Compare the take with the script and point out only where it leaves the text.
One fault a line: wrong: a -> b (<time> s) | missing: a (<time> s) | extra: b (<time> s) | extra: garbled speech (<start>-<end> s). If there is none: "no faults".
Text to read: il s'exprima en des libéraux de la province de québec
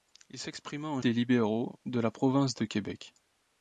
no faults